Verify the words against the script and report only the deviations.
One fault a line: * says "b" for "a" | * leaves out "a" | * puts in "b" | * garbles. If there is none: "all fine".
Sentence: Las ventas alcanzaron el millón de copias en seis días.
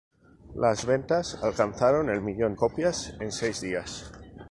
* leaves out "de"